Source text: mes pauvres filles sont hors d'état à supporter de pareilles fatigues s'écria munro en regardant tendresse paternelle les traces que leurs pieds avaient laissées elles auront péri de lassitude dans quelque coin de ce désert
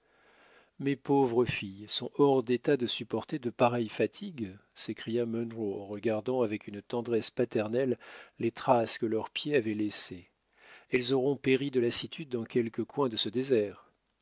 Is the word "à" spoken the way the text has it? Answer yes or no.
no